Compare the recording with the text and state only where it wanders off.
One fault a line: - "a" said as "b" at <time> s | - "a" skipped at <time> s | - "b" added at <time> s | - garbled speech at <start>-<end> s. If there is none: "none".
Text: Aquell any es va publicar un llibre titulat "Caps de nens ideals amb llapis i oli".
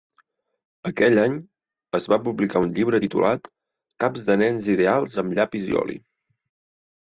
none